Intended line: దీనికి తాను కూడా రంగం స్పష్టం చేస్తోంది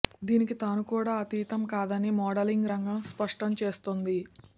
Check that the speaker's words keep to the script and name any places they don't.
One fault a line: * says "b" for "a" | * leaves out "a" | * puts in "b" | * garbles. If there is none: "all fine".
* puts in "అతీతం కాదని మోడలింగ్"